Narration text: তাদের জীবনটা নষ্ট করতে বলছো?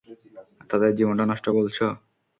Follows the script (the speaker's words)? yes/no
no